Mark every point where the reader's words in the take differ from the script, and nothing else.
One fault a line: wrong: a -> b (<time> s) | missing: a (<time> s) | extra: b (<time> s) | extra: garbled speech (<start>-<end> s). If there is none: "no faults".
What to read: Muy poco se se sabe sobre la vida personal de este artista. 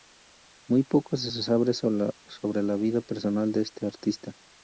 no faults